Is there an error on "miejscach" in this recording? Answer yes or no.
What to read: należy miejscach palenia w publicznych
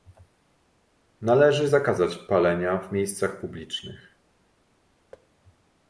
yes